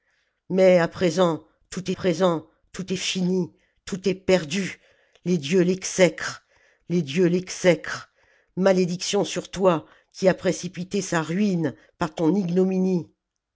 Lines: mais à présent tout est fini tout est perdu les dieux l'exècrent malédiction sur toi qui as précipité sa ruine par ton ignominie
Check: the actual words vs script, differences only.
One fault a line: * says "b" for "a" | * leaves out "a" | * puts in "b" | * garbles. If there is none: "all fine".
* puts in "présent tout"
* puts in "les dieux l'exècrent"